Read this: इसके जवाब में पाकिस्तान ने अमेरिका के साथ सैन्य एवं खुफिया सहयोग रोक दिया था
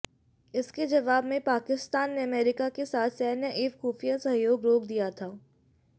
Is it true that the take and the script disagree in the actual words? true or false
false